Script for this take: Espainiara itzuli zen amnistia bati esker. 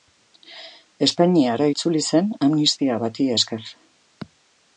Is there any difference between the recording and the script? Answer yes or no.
no